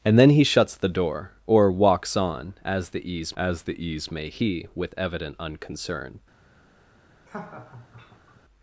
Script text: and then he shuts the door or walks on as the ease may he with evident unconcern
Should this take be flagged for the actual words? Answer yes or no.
yes